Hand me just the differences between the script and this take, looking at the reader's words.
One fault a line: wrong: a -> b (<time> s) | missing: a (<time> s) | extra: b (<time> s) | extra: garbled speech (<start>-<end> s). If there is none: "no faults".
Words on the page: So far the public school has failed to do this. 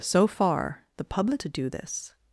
missing: school has failed (1.4 s)